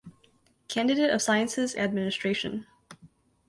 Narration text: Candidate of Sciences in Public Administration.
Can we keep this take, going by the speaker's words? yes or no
no